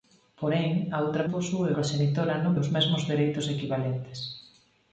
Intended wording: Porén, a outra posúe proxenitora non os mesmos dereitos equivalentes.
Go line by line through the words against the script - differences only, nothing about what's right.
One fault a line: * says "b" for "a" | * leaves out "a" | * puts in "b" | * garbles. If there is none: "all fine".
all fine